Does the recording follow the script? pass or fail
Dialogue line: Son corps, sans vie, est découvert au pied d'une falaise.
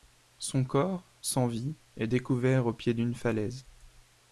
pass